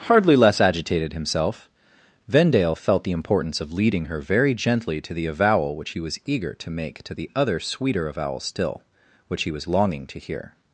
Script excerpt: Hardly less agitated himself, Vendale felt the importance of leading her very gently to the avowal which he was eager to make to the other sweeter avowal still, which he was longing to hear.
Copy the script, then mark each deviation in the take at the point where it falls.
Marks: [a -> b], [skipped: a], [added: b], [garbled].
Hardly less agitated himself, Vendale felt the importance of leading her very gently to the avowal which he was eager to make to the other sweeter avowal still, which he was longing to hear.